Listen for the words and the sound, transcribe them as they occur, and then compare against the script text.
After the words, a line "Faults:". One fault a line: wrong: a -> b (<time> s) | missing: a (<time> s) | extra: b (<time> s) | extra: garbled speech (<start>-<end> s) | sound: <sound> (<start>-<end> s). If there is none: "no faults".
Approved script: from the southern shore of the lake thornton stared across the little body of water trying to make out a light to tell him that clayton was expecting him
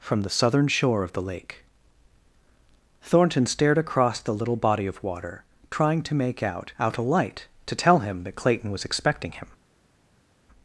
from the southern shore of the lake thornton stared across the little body of water trying to make out out a light to tell him that clayton was expecting him
Faults:
extra: out (6.8 s)